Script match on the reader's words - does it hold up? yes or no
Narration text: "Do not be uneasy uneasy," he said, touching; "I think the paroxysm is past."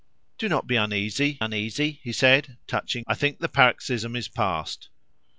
yes